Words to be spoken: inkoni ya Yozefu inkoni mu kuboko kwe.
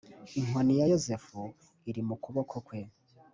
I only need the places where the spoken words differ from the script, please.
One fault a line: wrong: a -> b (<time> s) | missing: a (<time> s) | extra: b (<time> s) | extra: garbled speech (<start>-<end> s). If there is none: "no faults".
wrong: inkoni -> iri (1.9 s)